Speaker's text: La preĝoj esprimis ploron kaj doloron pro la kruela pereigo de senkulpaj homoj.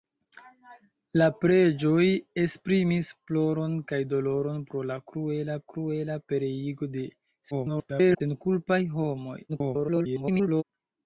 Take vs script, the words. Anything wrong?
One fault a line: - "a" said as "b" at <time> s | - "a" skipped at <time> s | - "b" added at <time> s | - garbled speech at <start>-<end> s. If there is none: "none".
- "kruela" added at 5.7 s
- garbled speech at 7.5-8.2 s
- garbled speech at 9.5-10.6 s